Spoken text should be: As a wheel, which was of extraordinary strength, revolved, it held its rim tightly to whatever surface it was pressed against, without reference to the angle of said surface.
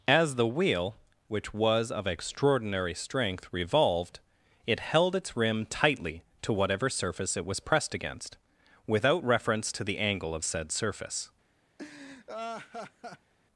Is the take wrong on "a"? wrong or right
wrong